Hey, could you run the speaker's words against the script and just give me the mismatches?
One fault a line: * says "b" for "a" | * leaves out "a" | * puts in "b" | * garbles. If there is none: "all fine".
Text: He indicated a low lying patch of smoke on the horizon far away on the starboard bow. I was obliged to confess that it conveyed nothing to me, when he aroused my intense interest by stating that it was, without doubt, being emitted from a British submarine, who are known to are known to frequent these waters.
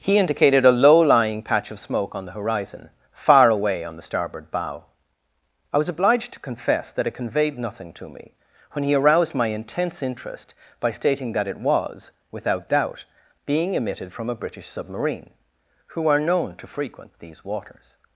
* leaves out "are known to"